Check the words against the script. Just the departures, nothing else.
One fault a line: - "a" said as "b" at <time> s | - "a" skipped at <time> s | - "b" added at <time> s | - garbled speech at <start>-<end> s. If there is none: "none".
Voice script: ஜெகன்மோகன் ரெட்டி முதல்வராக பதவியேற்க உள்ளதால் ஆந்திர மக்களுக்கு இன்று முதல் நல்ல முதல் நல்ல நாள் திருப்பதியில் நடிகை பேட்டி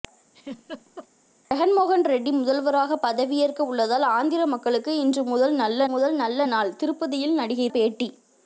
none